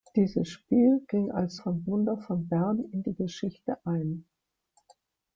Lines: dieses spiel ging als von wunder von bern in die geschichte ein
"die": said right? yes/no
yes